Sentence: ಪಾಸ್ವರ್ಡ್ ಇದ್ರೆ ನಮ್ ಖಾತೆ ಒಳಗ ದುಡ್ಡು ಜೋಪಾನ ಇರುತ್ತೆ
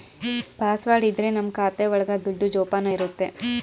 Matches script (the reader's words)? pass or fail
pass